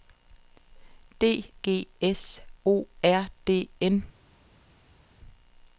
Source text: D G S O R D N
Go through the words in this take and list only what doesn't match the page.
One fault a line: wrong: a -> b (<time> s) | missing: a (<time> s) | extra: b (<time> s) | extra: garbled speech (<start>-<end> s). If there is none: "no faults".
no faults